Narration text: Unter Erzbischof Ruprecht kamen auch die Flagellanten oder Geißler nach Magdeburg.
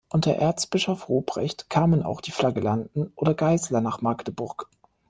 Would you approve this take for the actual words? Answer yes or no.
yes